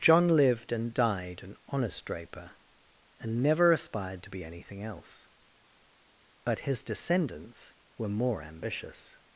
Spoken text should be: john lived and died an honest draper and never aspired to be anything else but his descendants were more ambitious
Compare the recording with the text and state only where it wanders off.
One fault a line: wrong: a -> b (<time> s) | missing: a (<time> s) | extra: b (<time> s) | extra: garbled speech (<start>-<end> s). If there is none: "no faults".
no faults